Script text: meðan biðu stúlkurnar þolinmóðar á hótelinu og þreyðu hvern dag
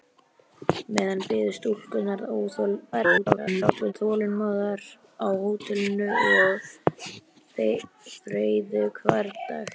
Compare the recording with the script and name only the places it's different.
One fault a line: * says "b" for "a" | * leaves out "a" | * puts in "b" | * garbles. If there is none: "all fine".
* garbles